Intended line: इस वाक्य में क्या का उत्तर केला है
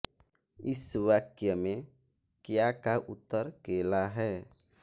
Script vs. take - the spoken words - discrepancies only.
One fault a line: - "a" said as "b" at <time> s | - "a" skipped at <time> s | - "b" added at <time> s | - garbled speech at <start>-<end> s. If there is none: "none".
none